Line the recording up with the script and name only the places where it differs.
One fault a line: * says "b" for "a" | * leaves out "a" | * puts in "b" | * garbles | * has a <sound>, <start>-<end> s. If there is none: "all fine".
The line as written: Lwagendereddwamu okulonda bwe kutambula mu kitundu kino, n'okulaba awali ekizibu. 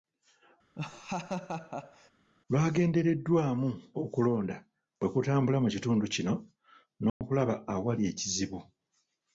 * has a laugh, 0.8-2.1 s
* has a dropout, 7.1-7.2 s